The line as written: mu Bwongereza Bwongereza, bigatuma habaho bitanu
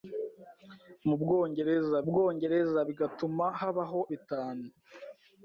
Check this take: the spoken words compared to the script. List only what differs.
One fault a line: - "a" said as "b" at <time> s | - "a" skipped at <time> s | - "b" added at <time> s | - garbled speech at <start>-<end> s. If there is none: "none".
none